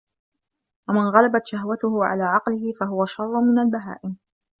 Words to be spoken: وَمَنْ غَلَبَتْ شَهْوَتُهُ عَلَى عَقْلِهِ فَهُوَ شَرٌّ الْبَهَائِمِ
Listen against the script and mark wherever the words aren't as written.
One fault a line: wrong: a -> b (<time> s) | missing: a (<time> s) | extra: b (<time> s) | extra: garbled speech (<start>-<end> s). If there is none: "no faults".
extra: مِنْ (3.4 s)